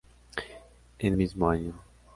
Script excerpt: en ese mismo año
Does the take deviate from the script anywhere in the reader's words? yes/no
yes